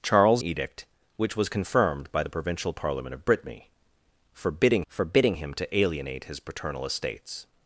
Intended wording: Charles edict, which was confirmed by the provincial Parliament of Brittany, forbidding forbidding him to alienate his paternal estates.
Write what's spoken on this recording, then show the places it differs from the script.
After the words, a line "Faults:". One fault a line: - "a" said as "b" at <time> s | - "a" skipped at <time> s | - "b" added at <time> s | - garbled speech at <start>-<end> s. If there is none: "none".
Charles edict, which was confirmed by the provincial Parliament of Brittany, forbidding forbidding him to alienate his paternal estates.
Faults:
none